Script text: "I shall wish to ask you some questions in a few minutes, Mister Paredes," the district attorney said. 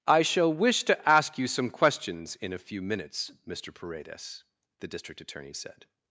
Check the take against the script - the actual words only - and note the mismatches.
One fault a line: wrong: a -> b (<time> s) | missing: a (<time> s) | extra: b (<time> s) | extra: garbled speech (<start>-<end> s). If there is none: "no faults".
no faults